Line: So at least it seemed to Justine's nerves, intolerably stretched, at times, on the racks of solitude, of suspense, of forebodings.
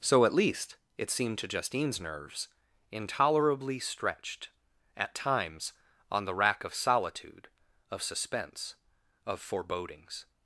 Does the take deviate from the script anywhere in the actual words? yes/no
yes